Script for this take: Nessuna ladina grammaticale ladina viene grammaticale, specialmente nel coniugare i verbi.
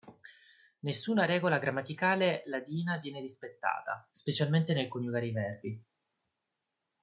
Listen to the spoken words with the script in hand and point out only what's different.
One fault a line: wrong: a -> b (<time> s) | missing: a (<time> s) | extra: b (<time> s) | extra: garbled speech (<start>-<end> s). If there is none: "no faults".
wrong: ladina -> regola (1.2 s)
wrong: grammaticale -> rispettata (3.2 s)